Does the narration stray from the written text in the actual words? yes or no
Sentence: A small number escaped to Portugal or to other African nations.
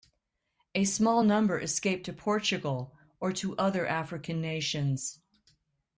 no